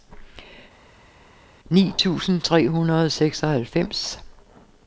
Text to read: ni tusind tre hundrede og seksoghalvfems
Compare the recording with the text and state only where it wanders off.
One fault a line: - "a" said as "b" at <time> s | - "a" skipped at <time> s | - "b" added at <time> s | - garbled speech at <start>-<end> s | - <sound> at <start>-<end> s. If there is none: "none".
none